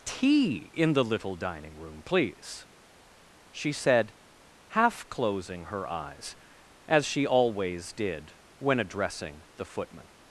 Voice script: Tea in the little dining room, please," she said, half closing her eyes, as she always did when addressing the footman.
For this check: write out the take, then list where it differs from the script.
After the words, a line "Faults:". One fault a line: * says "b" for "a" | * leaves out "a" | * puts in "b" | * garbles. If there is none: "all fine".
Tea in the little dining room, please," she said, half closing her eyes, as she always did when addressing the footman.
Faults:
all fine